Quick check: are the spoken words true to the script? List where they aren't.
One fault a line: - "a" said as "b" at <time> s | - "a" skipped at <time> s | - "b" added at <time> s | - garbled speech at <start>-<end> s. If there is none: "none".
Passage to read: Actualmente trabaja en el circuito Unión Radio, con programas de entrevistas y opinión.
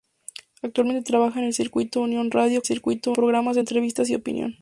- "con" said as "circuito" at 2.6 s